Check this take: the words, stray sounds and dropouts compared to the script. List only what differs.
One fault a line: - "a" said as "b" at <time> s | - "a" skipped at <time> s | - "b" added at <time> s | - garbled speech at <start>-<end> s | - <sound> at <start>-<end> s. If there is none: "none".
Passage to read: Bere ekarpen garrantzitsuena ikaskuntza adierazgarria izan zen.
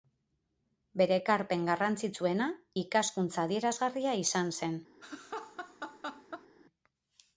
- laugh at 5.0-6.5 s